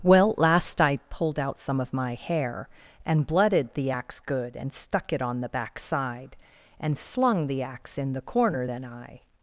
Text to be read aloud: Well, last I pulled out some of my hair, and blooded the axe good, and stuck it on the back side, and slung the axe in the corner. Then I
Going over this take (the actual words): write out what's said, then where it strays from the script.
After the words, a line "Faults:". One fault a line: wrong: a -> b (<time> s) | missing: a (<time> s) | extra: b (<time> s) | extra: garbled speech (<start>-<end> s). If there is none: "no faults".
Well, last I pulled out some of my hair, and blooded the axe good, and stuck it on the back side, and slung the axe in the corner. Then I
Faults:
no faults